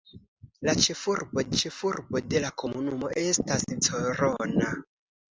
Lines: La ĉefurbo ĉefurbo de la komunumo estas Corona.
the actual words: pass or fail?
pass